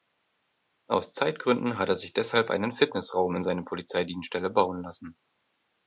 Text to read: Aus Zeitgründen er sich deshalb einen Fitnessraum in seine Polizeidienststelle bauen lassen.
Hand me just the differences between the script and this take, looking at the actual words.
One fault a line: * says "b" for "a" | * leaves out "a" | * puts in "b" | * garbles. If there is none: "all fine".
* puts in "hat"